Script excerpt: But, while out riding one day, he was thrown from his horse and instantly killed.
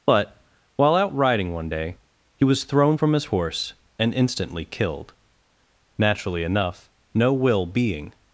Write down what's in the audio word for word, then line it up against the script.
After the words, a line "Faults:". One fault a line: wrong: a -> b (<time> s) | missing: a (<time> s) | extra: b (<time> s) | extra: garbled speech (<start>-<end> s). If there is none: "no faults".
But, while out riding one day, he was thrown from his horse and instantly killed. Naturally enough, no will being
Faults:
extra: Naturally enough no will being (6.0 s)